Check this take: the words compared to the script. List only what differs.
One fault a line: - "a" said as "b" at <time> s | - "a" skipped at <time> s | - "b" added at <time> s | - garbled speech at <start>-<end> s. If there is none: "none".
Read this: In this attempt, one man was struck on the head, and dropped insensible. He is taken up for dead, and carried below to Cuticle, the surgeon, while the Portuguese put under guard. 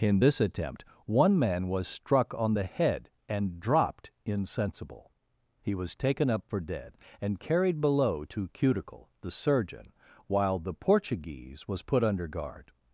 - "is" said as "was" at 5.7 s
- "was" added at 11.7 s